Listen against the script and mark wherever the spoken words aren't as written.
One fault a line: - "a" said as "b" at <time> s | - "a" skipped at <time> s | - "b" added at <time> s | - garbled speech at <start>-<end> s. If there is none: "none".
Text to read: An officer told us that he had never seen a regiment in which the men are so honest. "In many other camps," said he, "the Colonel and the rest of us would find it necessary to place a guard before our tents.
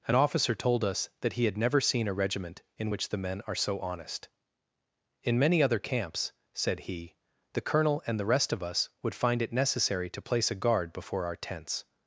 none